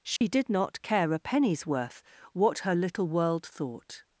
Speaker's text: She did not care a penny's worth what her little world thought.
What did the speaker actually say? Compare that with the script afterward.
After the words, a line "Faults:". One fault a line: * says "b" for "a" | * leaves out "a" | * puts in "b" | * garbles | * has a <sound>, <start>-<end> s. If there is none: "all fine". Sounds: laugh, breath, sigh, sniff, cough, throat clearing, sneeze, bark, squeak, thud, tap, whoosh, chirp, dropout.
She did not care a penny's worth what her little world thought.
Faults:
* has a dropout, 0.2-0.2 s